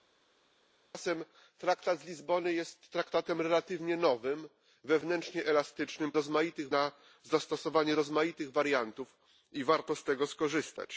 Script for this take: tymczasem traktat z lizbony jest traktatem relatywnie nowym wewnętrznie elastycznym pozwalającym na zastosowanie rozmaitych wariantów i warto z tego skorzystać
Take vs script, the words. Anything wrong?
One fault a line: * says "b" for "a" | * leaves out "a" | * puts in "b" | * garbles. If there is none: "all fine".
* says "rozmaitych" for "pozwalającym"